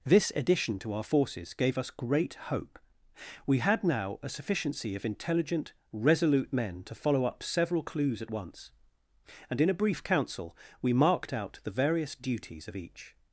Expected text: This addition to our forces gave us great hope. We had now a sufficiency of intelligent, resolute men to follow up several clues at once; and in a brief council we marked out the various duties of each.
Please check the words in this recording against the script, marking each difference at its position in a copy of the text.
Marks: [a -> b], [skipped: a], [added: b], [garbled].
This addition to our forces gave us great hope. We had now a sufficiency of intelligent, resolute men to follow up several clues at once; and in a brief council we marked out the various duties of each.